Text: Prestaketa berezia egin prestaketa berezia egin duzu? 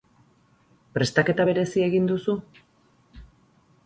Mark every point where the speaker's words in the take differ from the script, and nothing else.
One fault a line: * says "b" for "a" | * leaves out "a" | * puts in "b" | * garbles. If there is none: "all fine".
* leaves out "prestaketa berezia egin"